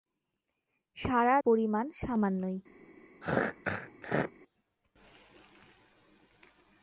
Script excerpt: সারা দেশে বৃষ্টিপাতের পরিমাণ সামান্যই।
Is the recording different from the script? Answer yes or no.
yes